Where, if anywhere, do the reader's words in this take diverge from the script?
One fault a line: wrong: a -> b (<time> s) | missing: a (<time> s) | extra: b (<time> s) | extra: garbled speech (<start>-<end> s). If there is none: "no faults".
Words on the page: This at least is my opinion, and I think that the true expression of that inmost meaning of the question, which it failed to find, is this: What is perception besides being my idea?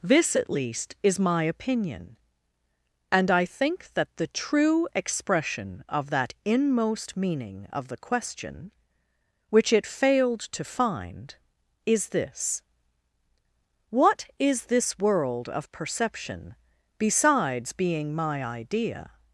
extra: this world of (14.7 s)